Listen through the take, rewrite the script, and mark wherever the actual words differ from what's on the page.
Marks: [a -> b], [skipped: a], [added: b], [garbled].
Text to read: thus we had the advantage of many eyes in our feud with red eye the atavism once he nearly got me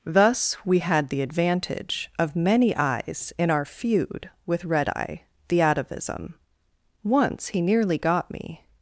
thus we had the advantage of many eyes in our feud with red eye the atavism once he nearly got me